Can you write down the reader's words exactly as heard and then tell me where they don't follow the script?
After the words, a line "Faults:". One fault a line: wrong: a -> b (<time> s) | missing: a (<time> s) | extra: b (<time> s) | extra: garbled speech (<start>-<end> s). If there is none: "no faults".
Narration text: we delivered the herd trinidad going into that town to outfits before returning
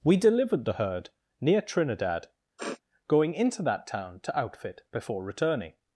we delivered the herd near trinidad going into that town to outfit before returning
Faults:
extra: near (1.4 s)
wrong: outfits -> outfit (4.4 s)